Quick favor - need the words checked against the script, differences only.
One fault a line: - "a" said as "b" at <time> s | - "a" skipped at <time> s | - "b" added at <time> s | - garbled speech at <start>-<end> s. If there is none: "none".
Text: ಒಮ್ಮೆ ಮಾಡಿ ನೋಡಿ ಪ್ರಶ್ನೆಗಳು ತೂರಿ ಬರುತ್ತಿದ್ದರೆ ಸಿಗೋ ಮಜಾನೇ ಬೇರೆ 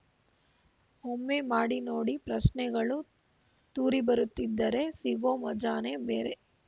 none